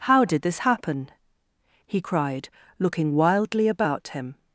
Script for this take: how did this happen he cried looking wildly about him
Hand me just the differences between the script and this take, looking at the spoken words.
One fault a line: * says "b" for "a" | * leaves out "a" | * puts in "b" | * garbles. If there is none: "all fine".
all fine